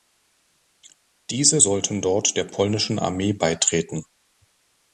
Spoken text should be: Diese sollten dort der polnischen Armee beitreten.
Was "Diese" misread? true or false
false